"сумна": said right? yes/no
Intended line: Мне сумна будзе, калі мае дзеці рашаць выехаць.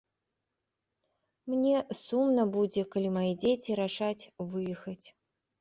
yes